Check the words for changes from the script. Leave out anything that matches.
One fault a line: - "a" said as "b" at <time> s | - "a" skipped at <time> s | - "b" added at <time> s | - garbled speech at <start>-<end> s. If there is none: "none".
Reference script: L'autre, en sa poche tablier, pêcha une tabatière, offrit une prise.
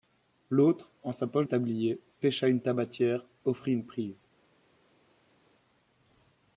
none